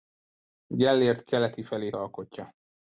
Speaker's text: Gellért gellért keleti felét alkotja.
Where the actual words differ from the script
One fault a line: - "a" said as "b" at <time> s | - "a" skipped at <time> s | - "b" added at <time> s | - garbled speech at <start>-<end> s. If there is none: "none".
- "gellért" skipped at 1.2 s